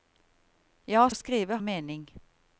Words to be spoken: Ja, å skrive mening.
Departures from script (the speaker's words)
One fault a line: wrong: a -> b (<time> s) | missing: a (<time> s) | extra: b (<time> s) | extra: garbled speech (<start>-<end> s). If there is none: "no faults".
no faults